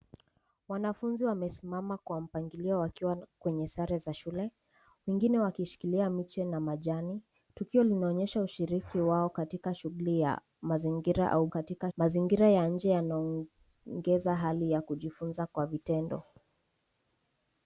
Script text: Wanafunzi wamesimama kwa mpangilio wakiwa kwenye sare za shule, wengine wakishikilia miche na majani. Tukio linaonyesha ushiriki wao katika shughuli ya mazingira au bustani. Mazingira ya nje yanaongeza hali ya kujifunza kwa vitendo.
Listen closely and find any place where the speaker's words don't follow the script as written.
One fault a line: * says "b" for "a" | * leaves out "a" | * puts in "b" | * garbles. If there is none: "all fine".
* says "katika" for "bustani"